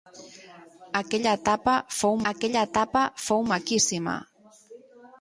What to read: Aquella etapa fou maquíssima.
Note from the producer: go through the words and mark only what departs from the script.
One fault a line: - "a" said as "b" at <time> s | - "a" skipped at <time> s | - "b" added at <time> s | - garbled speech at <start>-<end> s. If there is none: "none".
- "aquella etapa fou" added at 2.3 s